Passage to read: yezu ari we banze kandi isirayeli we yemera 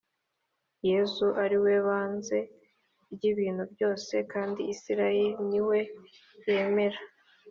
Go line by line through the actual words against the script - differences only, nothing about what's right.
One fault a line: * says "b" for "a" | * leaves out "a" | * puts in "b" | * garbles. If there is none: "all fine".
* puts in "ry'ibintu byose"
* puts in "ni"